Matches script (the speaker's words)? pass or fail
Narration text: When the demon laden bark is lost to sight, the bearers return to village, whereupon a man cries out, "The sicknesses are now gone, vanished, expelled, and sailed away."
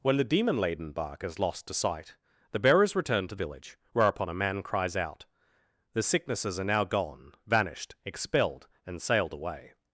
pass